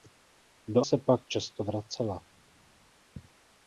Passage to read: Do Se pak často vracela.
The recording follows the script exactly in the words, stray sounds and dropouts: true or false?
true